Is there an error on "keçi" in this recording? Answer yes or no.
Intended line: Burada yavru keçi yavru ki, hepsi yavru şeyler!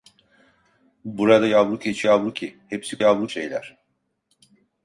no